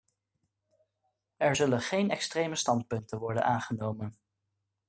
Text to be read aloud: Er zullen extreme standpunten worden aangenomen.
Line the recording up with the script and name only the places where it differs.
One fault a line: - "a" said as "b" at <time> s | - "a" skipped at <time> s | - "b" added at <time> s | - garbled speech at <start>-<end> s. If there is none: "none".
- "geen" added at 1.8 s